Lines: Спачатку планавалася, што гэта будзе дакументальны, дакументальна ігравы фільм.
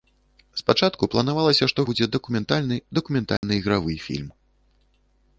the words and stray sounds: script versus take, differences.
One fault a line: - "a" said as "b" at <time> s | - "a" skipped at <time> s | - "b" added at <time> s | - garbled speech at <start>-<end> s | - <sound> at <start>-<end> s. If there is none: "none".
- "гэта" skipped at 1.9 s
- dropout at 3.4-3.4 s